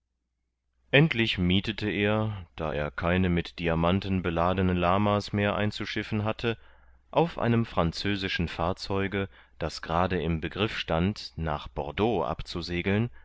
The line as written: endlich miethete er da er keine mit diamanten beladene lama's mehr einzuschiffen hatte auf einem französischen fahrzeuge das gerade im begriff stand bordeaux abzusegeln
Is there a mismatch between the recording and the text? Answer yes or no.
yes